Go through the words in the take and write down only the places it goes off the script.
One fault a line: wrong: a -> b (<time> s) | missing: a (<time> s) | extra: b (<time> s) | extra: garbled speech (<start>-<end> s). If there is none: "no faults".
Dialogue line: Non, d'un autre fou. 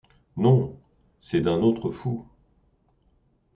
extra: c'est (1.2 s)